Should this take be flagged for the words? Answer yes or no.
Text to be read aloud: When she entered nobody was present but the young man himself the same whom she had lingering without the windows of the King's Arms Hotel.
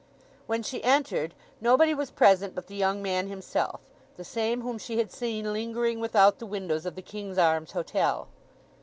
yes